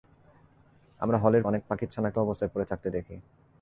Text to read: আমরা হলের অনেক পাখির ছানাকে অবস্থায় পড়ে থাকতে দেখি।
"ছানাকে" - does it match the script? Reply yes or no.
yes